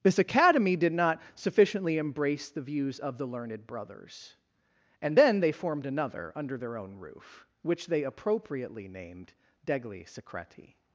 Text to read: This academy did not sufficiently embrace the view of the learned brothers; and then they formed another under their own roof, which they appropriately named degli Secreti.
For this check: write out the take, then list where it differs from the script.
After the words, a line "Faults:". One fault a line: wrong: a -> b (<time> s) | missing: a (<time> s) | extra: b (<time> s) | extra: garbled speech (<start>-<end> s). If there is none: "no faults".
This academy did not sufficiently embrace the views of the learned brothers; and then they formed another under their own roof, which they appropriately named degli Secreti.
Faults:
wrong: view -> views (2.6 s)